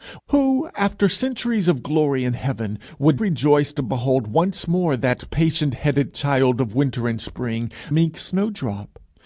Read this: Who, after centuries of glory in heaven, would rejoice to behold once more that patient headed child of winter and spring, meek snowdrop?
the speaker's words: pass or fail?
pass